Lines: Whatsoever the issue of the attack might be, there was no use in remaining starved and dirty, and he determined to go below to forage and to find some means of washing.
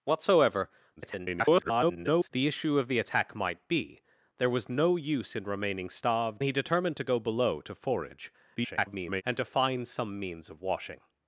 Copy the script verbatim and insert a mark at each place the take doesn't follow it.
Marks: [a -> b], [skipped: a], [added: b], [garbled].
Whatsoever [garbled] the issue of the attack might be, there was no use in remaining starved [skipped: and dirty, and] he determined to go below to forage [garbled] and to find some means of washing.